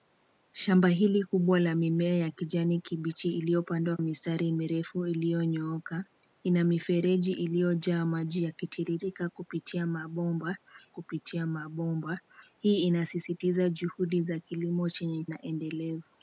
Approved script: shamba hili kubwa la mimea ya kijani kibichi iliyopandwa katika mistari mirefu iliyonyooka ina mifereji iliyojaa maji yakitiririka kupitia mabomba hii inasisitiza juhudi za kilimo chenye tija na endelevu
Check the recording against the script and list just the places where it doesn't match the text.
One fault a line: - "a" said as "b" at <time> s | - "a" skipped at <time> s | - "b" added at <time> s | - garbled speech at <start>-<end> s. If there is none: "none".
- "katika" skipped at 4.0 s
- "kupitia mabomba" added at 10.9 s
- "tija" skipped at 15.2 s